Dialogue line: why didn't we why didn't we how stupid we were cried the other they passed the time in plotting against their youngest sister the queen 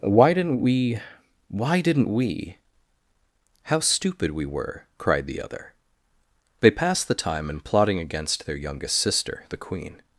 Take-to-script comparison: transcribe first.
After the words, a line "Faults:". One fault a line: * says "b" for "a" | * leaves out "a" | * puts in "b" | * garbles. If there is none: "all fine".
why didn't we why didn't we how stupid we were cried the other they passed the time in plotting against their youngest sister the queen
Faults:
all fine